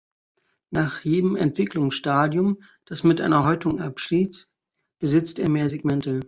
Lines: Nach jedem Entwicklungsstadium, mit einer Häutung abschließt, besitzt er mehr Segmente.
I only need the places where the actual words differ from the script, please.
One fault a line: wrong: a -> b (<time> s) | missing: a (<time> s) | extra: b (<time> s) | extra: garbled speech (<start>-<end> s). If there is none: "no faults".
extra: das (2.9 s)